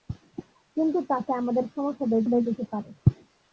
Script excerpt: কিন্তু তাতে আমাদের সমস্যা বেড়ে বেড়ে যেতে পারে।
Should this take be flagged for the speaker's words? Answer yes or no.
no